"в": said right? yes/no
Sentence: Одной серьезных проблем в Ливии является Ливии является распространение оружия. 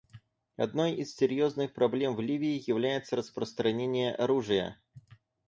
yes